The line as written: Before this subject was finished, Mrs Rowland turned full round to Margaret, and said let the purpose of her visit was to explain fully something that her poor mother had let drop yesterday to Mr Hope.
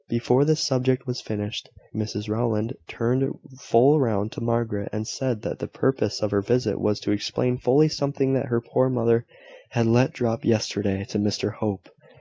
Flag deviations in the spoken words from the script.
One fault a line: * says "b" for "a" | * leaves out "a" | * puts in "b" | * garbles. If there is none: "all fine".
* says "that" for "let"